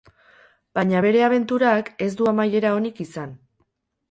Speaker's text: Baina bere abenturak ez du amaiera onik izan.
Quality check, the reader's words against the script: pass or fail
pass